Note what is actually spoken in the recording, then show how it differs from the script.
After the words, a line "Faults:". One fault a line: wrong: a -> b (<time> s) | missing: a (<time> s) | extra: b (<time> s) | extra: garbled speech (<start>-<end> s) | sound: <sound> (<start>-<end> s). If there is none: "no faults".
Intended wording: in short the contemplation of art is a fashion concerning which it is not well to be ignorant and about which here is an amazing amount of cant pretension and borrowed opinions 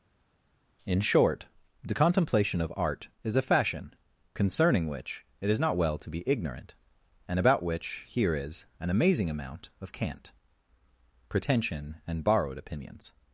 in short the contemplation of art is a fashion concerning which it is not well to be ignorant and about which here is an amazing amount of cant pretension and borrowed opinions
Faults:
no faults